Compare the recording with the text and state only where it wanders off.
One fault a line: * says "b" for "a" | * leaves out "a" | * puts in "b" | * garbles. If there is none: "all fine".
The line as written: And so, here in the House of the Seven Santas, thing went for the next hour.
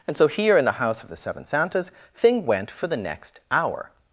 all fine